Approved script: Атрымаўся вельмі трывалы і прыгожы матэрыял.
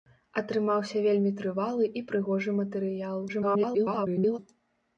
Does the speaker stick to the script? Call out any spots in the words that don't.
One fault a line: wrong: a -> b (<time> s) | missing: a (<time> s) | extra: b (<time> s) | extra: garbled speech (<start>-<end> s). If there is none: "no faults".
extra: garbled speech (3.3-4.4 s)